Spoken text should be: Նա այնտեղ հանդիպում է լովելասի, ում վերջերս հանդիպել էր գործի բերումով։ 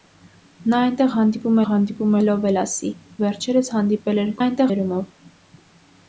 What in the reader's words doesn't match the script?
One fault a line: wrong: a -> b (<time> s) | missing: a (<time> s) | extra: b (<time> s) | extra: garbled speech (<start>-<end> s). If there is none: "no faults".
extra: հանդիպում (1.7 s)
missing: ում (2.9 s)
wrong: գործի -> այնտեղ (4.4 s)